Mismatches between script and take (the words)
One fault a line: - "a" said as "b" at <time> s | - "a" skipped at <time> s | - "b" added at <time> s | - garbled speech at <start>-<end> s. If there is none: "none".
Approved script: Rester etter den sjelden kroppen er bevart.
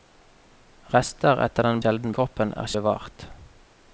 none